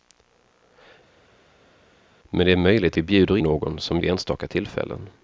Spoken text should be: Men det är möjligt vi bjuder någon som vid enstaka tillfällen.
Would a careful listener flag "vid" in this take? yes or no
no